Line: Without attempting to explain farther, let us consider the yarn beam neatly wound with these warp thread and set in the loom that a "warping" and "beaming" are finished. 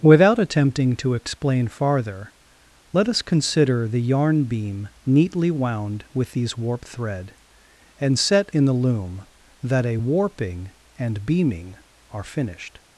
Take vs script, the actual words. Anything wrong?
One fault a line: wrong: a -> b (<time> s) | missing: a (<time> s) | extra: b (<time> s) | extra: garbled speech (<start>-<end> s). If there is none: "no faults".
no faults